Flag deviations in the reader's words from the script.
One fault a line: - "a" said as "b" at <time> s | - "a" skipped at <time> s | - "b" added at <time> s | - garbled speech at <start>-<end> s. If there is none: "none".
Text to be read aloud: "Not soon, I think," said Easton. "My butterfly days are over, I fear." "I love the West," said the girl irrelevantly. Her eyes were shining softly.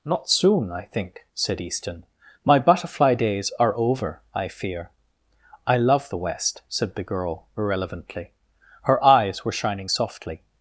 none